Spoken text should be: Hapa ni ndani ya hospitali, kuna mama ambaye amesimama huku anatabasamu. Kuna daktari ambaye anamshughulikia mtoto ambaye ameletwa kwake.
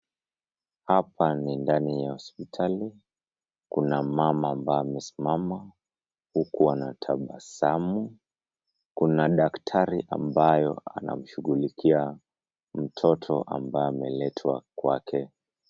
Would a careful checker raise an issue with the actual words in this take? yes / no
no